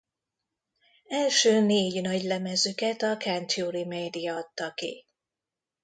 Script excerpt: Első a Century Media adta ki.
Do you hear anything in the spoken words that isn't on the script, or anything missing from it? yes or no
yes